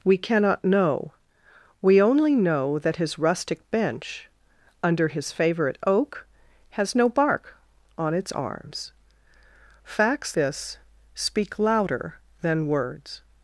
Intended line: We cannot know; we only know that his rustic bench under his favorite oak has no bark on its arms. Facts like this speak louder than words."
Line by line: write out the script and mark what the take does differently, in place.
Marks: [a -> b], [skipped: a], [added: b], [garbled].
We cannot know; we only know that his rustic bench under his favorite oak has no bark on its arms. Facts [skipped: like] this speak louder than words."